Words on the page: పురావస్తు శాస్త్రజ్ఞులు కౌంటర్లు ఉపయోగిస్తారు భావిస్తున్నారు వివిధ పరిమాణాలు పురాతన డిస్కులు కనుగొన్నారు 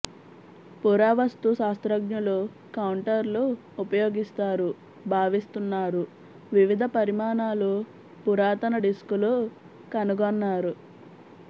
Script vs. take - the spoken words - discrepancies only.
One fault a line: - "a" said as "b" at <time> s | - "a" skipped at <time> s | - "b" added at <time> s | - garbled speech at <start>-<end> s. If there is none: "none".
none